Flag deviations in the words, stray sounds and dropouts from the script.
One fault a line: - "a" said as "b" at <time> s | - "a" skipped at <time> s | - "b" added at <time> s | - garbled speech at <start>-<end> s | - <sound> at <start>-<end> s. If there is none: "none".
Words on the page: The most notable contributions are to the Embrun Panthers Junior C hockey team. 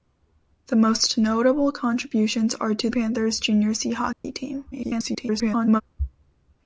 - "the Embrun" skipped at 2.9 s
- dropout at 4.1-4.2 s
- garbled speech at 4.7-5.8 s